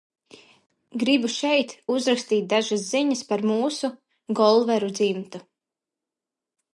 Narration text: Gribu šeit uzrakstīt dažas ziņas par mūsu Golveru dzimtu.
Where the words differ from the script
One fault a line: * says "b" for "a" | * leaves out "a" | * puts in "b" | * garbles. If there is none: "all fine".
all fine